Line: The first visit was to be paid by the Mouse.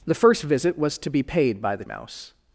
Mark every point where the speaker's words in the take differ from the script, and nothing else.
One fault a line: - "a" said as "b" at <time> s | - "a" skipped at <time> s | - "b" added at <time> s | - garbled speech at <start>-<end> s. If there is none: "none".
none